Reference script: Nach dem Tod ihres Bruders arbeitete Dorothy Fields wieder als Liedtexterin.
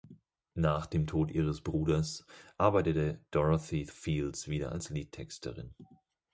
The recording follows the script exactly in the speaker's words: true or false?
true